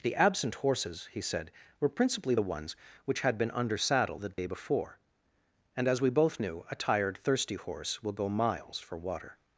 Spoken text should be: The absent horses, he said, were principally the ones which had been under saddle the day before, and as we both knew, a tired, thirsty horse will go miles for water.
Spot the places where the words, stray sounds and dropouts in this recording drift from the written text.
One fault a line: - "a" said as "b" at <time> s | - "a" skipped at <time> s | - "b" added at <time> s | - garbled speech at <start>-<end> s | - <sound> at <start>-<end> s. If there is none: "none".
- dropout at 4.3-4.4 s